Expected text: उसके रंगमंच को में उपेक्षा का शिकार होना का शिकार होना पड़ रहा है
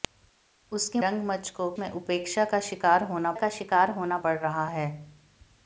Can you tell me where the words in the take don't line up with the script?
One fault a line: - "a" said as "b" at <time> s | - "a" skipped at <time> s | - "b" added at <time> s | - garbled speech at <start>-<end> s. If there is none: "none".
none